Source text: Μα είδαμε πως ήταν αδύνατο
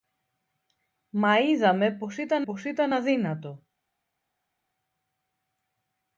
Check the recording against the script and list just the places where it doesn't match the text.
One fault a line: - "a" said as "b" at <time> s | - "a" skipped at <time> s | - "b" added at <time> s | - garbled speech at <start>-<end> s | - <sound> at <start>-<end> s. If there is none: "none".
- "πως ήταν" added at 2.4 s